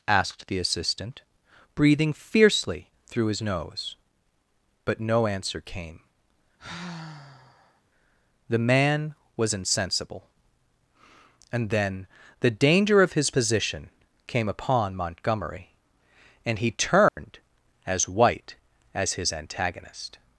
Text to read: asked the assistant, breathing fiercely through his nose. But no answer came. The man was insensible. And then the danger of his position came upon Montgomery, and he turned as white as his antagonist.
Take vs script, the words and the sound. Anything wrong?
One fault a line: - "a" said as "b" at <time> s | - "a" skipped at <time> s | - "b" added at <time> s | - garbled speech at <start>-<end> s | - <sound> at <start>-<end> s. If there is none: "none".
- sigh at 6.6-7.8 s
- dropout at 17.1-17.2 s